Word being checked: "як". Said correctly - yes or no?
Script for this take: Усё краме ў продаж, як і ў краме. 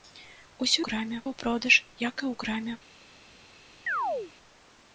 yes